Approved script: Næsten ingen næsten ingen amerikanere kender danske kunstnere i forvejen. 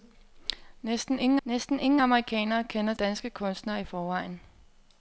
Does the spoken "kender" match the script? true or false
true